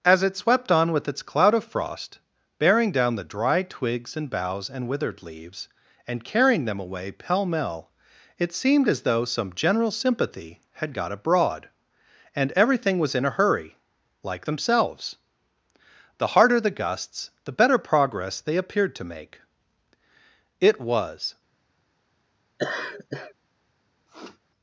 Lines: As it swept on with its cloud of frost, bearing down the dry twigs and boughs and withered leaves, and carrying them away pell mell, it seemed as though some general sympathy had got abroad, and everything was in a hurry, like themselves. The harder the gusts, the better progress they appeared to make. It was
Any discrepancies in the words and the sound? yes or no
yes